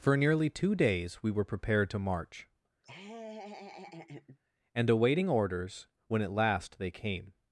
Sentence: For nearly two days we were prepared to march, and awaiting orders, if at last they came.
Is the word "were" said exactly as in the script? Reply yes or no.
yes